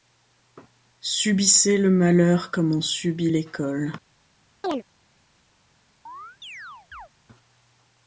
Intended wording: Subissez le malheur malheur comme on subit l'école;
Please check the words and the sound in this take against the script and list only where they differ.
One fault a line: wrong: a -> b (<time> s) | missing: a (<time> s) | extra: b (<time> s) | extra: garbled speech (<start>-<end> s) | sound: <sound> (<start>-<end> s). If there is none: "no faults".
missing: malheur (2.5 s)
sound: chirp (4.6-4.8 s)
sound: chirp (6.1-7.1 s)